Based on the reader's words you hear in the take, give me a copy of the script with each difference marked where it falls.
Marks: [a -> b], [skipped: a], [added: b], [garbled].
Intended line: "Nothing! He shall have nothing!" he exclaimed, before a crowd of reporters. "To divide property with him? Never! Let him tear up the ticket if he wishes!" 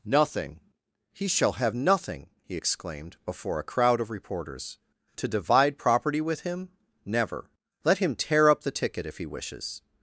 "Nothing! He shall have nothing!" he exclaimed, before a crowd of reporters. "To divide property with him? Never! Let him tear up the ticket if he wishes!"